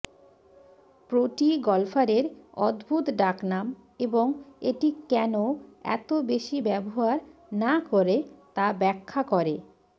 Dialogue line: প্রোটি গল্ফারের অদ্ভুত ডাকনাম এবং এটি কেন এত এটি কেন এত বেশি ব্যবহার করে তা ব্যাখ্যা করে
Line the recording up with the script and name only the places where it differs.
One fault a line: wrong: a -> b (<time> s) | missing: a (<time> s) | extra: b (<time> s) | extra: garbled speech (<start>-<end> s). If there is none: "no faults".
missing: এটি কেন এত (6.1 s)
extra: না (7.5 s)